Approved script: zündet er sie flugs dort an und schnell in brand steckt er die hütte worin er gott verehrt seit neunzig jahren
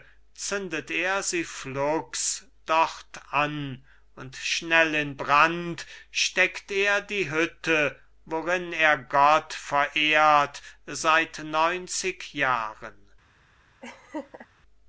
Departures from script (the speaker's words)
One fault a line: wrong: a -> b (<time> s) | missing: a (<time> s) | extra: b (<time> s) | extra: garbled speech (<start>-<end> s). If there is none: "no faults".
no faults